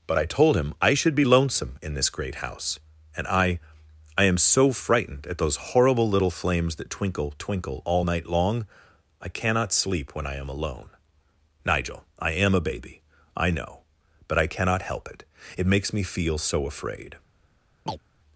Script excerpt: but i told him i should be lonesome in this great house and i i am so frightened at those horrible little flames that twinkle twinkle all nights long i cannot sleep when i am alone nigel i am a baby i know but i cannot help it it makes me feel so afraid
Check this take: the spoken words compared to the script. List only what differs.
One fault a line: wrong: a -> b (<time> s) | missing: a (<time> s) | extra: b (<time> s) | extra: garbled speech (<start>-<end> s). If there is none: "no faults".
wrong: nights -> night (8.0 s)